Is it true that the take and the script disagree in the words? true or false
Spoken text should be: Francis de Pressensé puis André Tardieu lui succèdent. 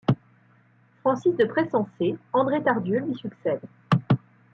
true